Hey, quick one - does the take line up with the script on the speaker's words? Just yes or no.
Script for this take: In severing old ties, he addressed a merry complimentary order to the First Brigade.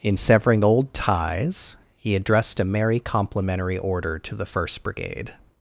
yes